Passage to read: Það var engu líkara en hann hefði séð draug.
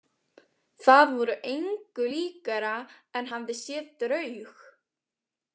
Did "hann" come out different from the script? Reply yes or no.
yes